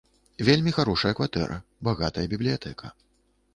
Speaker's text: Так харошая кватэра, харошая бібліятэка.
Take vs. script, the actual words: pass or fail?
fail